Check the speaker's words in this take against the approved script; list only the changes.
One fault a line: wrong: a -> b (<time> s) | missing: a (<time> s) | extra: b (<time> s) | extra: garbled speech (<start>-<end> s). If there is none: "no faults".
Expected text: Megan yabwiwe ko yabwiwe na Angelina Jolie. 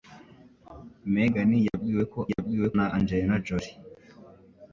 no faults